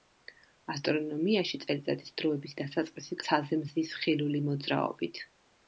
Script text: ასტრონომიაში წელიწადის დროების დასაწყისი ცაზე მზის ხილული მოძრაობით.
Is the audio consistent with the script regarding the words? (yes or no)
yes